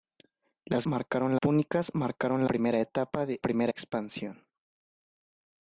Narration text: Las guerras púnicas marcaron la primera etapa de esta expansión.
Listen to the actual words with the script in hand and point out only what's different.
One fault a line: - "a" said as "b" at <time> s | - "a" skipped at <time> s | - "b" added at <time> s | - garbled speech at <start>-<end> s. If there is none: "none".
- "guerras" said as "marcaron" at 0.8 s
- "la" skipped at 2.4 s
- "esta" said as "primera" at 3.4 s